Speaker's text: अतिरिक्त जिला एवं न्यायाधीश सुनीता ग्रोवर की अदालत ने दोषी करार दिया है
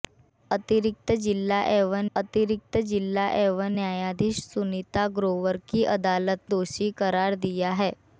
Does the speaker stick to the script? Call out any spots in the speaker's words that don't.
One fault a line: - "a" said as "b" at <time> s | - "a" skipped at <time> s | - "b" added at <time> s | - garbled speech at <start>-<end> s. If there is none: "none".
- "अतिरिक्त जिला एवं" added at 2.2 s
- "ने" skipped at 6.5 s